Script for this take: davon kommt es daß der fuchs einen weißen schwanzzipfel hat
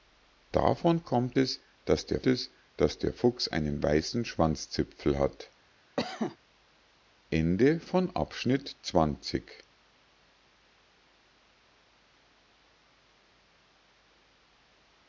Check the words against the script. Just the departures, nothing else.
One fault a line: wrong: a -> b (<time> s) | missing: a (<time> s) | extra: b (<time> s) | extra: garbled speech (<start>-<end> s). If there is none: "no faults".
extra: es daß der (2.2 s)